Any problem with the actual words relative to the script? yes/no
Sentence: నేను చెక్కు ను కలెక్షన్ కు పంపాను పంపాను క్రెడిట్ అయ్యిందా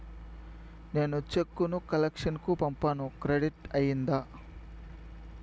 yes